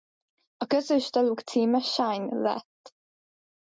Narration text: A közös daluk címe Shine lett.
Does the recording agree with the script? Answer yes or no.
yes